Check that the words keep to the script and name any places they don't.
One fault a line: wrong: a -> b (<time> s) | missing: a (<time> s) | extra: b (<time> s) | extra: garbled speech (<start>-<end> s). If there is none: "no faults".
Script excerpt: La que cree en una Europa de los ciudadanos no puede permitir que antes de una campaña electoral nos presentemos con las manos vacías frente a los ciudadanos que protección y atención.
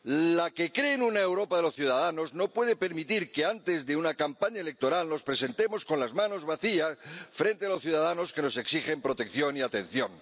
extra: nos exigen (8.4 s)